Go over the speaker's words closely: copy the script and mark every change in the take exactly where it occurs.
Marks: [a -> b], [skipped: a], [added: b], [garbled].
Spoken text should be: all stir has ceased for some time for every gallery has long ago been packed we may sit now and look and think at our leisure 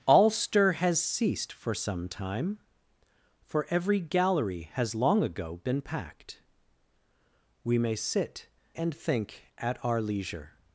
all stir has ceased for some time for every gallery has long ago been packed we may sit [skipped: now and look] and think at our leisure